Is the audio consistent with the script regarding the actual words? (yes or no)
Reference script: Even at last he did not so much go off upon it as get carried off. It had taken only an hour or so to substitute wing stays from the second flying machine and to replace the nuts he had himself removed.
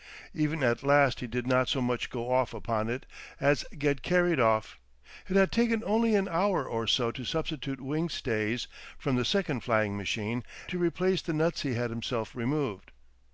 no